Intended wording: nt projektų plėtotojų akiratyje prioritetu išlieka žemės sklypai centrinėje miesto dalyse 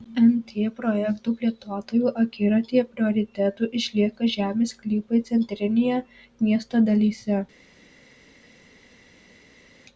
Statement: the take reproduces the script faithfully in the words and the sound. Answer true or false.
true